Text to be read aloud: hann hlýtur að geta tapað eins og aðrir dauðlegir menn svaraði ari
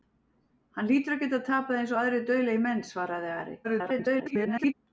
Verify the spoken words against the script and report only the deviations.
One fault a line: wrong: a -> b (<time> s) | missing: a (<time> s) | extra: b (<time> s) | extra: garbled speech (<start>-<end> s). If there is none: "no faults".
extra: garbled speech (3.6-4.7 s)